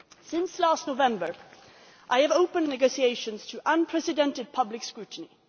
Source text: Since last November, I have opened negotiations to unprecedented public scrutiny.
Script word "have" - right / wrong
right